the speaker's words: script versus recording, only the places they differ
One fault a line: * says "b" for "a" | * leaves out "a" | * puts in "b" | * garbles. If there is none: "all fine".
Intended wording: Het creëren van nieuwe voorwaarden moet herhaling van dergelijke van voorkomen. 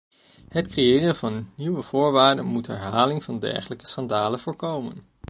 * says "schandalen" for "van"